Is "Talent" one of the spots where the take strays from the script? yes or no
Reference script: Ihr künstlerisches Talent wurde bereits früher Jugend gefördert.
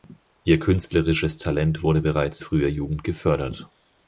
no